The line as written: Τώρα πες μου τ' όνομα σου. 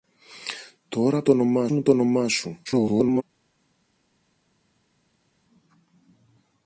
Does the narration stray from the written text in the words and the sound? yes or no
yes